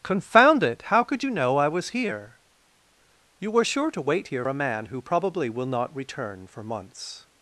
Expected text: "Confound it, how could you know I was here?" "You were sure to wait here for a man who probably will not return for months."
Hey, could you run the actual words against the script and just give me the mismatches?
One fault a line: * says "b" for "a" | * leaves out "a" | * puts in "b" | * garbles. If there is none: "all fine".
* leaves out "for"